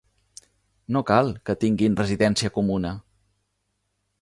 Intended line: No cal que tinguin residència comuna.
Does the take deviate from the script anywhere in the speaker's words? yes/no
no